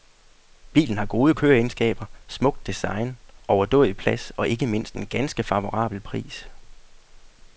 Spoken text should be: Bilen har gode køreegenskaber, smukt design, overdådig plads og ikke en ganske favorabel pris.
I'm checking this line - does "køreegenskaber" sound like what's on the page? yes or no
yes